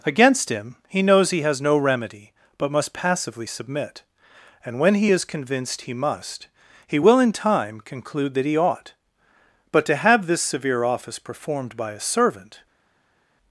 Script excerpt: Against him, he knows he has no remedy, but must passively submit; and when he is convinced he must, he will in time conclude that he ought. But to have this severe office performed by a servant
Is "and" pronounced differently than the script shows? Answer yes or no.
no